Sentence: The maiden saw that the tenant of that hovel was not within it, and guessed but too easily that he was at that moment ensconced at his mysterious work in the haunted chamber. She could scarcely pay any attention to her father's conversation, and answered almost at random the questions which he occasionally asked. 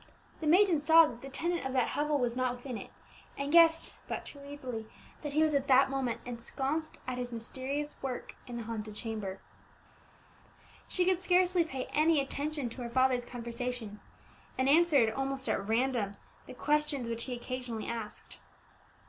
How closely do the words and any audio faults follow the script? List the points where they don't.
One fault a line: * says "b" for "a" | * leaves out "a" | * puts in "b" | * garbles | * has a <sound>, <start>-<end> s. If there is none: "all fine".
all fine